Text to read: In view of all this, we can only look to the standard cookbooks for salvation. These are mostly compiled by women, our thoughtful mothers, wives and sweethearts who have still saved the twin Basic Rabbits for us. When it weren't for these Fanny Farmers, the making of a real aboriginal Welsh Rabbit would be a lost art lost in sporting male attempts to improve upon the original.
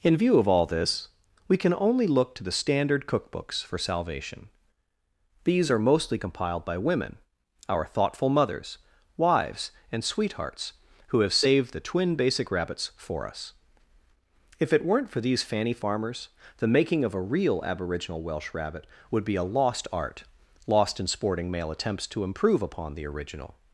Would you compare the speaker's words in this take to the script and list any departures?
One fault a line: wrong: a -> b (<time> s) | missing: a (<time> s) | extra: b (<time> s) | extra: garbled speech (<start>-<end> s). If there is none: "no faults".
missing: still (11.3 s)
wrong: When -> If (14.6 s)